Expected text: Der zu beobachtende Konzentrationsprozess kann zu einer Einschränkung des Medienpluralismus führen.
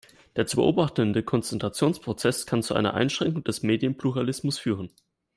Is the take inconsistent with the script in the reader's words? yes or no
no